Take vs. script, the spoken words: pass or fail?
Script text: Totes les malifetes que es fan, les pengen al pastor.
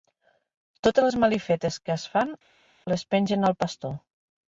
pass